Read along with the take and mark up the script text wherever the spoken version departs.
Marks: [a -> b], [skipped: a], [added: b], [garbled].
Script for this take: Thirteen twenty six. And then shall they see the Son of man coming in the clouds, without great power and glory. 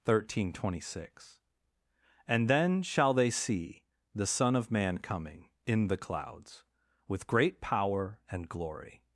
Thirteen twenty six. And then shall they see the Son of man coming in the clouds, [without -> with] great power and glory.